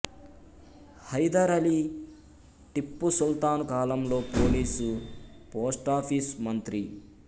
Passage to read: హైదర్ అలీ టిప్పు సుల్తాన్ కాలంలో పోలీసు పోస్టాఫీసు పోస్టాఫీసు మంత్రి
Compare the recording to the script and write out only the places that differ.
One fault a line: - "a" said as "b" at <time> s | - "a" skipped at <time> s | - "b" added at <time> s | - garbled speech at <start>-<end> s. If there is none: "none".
- "పోస్టాఫీసు" skipped at 6.4 s